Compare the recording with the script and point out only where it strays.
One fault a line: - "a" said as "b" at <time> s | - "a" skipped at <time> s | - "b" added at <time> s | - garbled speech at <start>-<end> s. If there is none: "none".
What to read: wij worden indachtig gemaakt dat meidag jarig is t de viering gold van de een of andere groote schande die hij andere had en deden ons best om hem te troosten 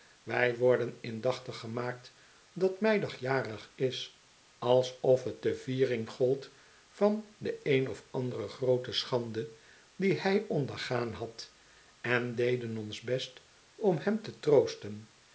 - "alsof" added at 4.6 s
- "andere" said as "ondergaan" at 10.5 s